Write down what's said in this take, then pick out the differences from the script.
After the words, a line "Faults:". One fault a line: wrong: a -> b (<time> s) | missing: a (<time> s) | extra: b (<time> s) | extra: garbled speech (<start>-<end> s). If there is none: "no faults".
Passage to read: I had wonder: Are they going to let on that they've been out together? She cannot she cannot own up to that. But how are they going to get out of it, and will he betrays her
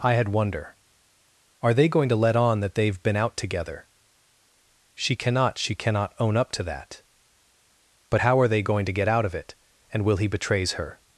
I had wonder: Are they going to let on that they've been out together? She cannot she cannot own up to that. But how are they going to get out of it, and will he betrays her
Faults:
no faults